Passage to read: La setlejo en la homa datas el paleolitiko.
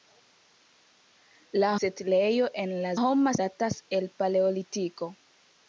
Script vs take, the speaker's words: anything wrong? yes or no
no